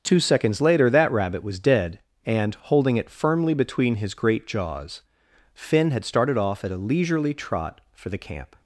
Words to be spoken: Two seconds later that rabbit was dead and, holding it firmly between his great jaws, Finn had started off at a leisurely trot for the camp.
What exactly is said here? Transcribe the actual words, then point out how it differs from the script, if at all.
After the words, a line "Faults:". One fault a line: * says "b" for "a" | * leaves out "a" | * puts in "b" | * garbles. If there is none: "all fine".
Two seconds later that rabbit was dead and, holding it firmly between his great jaws, Finn had started off at a leisurely trot for the camp.
Faults:
all fine